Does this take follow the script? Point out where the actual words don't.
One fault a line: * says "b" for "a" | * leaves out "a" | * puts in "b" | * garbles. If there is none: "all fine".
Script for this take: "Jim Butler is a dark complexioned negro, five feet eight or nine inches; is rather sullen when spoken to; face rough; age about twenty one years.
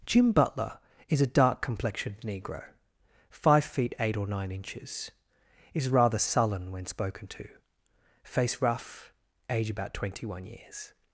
all fine